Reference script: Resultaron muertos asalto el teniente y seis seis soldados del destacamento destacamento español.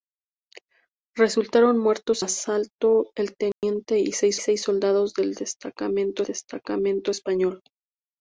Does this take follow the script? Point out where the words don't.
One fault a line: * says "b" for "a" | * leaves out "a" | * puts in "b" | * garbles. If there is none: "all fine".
all fine